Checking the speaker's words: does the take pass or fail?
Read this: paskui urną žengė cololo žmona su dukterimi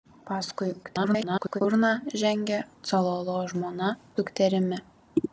fail